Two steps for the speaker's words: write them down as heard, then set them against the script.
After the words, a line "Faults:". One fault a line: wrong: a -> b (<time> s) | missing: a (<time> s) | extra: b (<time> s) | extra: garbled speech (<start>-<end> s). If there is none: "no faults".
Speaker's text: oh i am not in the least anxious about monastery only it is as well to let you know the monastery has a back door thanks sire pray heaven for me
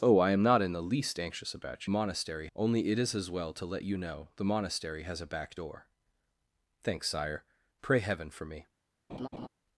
oh i am not in the least anxious about monastery only it is as well to let you know the monastery has a back door thanks sire pray heaven for me
Faults:
no faults